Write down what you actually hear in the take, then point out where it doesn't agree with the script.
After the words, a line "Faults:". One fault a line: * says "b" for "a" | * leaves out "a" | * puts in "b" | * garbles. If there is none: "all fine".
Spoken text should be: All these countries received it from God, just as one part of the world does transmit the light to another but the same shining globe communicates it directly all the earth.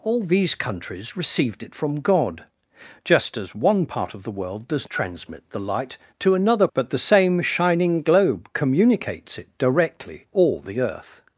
All these countries received it from God, just as one part of the world does transmit the light to another but the same shining globe communicates it directly all the earth.
Faults:
all fine